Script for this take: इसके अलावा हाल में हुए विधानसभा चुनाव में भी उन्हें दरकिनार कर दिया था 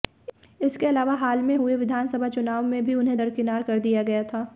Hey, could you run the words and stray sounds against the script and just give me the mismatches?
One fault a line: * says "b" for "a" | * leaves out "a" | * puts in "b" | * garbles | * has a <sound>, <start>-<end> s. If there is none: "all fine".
* puts in "गया"